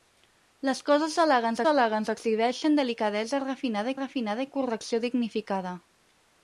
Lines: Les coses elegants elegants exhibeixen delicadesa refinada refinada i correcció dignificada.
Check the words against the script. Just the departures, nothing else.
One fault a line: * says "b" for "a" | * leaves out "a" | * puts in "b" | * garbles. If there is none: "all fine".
all fine